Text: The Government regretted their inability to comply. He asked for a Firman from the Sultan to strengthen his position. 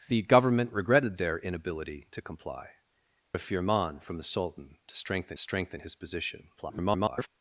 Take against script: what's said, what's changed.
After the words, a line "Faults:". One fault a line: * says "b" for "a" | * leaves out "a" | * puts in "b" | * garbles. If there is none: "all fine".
The Government regretted their inability to comply. A Firman from the Sultan to strengthen strengthen his position. [garbled]
Faults:
* leaves out "He asked for"
* puts in "strengthen"
* garbles